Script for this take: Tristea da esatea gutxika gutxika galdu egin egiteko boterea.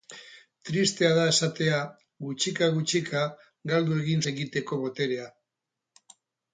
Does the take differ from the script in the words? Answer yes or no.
no